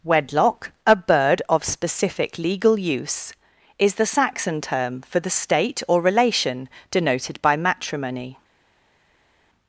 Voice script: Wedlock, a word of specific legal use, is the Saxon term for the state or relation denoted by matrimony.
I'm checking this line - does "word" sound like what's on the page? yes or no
no